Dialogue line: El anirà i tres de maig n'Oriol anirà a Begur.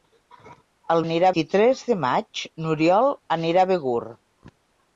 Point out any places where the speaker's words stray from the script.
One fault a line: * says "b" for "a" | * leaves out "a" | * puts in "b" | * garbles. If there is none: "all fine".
all fine